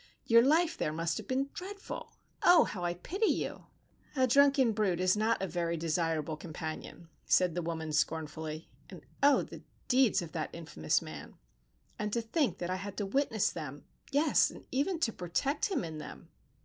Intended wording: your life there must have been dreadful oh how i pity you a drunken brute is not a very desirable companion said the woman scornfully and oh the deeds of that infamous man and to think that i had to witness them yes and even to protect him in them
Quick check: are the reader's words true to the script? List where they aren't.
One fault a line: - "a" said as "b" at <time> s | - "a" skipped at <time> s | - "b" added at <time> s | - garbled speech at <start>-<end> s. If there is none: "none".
none